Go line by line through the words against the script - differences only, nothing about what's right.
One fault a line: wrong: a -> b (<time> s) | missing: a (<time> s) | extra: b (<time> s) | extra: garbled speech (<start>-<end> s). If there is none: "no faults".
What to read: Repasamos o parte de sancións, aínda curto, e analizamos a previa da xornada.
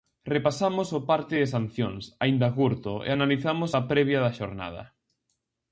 no faults